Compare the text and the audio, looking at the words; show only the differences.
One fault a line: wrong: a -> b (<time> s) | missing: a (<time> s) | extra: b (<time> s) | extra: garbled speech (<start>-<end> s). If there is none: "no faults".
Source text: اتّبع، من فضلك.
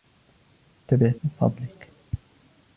no faults